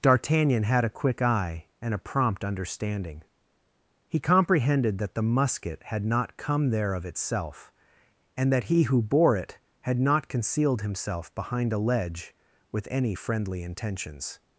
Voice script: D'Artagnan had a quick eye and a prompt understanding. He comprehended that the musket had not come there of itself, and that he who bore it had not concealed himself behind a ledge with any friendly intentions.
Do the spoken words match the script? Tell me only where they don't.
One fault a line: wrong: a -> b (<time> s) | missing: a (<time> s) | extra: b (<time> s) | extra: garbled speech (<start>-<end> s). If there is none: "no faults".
no faults